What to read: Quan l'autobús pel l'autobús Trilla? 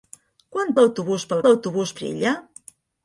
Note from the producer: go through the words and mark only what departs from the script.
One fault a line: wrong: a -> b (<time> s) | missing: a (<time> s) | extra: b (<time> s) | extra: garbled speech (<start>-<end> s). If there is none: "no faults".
no faults